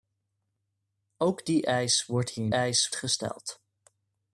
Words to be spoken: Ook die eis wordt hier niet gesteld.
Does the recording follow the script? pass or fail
fail